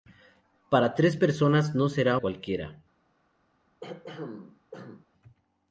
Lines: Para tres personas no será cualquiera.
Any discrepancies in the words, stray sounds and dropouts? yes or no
yes